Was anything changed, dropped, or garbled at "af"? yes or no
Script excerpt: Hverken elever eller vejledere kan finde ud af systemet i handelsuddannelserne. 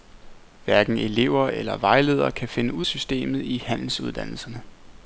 yes